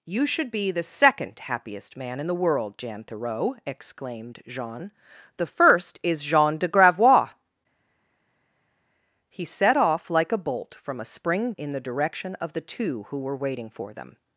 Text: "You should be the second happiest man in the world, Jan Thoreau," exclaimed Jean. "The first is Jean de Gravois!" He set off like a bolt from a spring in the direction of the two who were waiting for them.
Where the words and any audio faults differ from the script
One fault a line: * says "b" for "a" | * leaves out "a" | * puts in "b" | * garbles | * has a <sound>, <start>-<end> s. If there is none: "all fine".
all fine